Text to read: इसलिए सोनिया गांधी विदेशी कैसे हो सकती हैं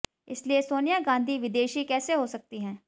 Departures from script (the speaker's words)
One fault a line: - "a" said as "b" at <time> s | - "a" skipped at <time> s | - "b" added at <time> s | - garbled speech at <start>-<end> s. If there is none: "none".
none